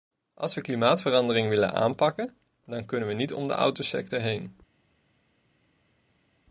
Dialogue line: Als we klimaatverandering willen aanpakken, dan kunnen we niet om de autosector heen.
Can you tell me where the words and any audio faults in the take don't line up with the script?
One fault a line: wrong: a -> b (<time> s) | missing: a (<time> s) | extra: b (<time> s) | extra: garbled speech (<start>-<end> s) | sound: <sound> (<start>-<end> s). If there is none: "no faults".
no faults